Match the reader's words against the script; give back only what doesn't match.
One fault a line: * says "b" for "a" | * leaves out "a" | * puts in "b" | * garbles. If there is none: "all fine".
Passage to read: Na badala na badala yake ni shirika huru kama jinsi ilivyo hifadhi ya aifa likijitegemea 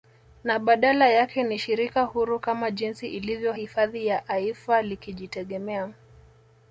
* leaves out "na badala"